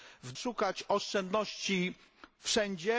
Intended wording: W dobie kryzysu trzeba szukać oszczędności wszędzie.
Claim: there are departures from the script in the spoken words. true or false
true